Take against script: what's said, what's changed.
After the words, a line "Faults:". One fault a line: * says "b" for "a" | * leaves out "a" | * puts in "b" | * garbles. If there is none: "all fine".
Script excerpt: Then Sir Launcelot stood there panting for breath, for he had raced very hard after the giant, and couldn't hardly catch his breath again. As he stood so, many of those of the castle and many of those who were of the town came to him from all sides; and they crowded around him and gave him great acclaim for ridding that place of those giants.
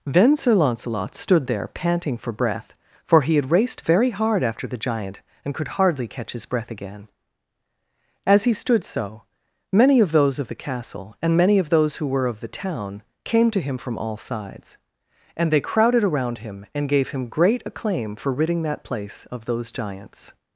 Then Sir Launcelot stood there panting for breath, for he had raced very hard after the giant, and could hardly catch his breath again. As he stood so, many of those of the castle and many of those who were of the town came to him from all sides; and they crowded around him and gave him great acclaim for ridding that place of those giants.
Faults:
* says "could" for "couldn't"